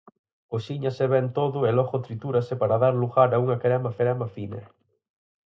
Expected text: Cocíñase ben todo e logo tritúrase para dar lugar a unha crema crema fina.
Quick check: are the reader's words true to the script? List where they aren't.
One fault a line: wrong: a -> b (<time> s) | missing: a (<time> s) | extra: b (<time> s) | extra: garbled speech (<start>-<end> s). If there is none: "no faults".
no faults